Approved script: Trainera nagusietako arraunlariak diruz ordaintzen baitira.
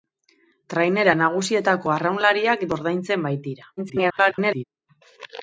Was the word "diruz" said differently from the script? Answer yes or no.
yes